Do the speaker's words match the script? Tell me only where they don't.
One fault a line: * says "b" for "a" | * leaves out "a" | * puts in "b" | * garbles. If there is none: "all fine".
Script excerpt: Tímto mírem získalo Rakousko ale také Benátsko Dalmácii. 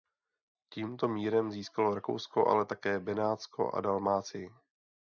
* puts in "a"